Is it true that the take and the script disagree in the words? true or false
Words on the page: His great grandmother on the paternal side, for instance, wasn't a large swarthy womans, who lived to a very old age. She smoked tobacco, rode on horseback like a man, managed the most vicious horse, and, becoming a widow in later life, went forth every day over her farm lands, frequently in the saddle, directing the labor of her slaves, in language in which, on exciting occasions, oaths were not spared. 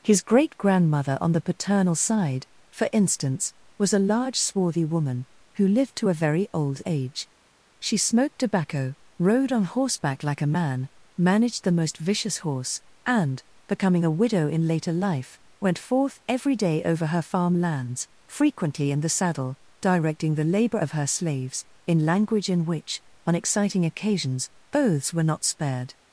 true